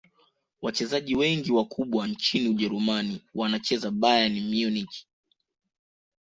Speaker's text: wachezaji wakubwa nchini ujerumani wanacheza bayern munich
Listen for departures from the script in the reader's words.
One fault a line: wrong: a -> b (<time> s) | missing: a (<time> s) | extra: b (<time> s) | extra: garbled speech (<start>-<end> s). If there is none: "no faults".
extra: wengi (1.1 s)